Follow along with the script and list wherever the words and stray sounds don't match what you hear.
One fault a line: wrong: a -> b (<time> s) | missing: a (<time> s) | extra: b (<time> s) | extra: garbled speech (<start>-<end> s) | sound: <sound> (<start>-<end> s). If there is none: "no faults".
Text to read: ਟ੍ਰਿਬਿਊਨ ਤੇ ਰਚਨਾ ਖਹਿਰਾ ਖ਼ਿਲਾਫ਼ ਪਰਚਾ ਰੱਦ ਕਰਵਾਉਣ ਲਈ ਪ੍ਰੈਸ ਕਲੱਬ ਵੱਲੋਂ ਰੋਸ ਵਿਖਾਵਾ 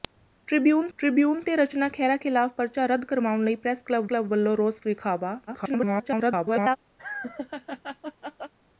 extra: ਟ੍ਰਿਬਿਊਨ (1.0 s)
extra: ਕਲੱਬ (4.0 s)
extra: garbled speech (5.5-6.8 s)
sound: laugh (7.0-8.5 s)